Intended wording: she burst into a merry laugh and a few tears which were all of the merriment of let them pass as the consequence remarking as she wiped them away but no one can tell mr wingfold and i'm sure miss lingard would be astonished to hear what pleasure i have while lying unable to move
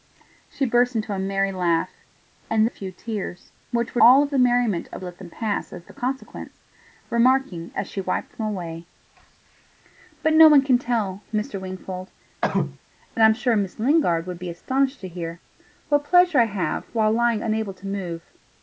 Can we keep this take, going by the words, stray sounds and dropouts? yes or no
no